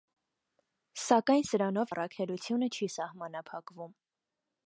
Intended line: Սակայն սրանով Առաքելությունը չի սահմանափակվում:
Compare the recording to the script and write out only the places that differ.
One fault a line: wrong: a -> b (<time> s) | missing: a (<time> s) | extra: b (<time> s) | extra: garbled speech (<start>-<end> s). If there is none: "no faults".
no faults